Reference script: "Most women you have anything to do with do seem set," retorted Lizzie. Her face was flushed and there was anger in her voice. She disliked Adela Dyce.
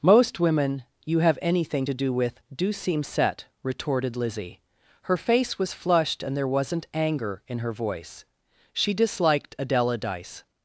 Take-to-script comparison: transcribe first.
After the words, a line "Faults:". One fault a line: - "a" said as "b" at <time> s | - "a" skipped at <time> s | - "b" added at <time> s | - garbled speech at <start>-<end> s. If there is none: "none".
"Most women you have anything to do with do seem set," retorted Lizzie. Her face was flushed and there wasn't anger in her voice. She disliked Adela Dyce.
Faults:
- "was" said as "wasn't" at 6.5 s